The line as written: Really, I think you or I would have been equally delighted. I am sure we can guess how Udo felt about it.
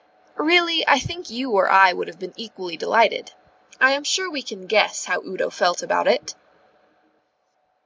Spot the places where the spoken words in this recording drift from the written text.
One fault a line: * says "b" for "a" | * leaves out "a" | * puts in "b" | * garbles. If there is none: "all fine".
all fine